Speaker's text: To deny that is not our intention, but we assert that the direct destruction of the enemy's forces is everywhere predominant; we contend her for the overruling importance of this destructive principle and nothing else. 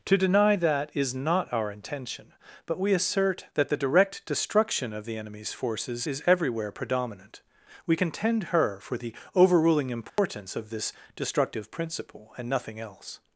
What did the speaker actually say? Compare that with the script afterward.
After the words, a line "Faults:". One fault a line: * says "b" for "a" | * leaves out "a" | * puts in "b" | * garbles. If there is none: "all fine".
To deny that is not our intention, but we assert that the direct destruction of the enemy's forces is everywhere predominant; we contend her for the overruling importance of this destructive principle and nothing else.
Faults:
all fine